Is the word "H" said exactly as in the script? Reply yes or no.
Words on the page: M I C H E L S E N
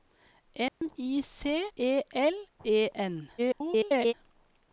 no